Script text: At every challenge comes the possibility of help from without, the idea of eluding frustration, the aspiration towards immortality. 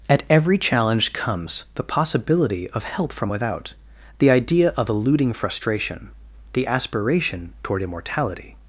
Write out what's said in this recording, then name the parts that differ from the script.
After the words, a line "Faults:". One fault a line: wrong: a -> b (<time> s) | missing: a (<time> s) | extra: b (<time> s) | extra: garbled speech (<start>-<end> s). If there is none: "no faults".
At every challenge comes the possibility of help from without, the idea of eluding frustration, the aspiration toward immortality.
Faults:
wrong: towards -> toward (7.6 s)